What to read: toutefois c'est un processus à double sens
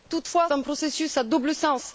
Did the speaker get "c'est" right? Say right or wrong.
wrong